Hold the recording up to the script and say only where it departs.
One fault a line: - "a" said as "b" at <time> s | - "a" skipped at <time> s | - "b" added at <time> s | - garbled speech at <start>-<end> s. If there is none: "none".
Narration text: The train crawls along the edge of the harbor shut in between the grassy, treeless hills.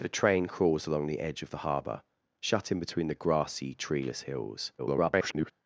- garbled speech at 4.8-5.5 s